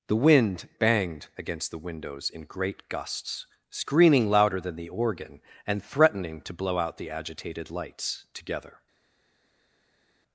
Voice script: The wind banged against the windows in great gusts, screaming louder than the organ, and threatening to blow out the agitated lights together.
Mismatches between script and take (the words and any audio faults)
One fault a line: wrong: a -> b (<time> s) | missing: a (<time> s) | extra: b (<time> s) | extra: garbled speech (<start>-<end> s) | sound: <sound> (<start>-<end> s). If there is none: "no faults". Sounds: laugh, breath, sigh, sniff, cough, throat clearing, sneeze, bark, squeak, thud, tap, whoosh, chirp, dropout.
no faults